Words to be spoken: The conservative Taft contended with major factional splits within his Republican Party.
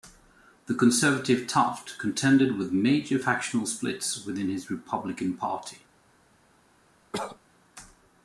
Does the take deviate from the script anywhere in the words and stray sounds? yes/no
yes